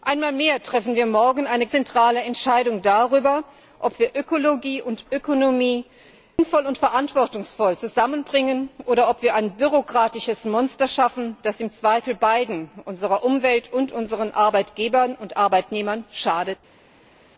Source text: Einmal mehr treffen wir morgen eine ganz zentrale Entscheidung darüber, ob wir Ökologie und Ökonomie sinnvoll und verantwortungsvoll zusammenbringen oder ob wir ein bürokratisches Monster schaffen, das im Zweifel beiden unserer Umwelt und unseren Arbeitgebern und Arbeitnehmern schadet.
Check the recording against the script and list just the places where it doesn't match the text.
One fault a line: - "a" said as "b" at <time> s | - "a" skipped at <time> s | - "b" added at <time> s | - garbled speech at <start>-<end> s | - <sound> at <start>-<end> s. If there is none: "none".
- "ganz" skipped at 1.7 s